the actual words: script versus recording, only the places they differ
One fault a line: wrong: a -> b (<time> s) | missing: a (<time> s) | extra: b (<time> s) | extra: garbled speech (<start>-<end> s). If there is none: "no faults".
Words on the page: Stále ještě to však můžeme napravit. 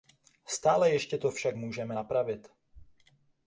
no faults